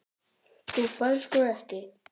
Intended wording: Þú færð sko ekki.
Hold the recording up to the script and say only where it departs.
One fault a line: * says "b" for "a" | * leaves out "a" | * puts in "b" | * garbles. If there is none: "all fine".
all fine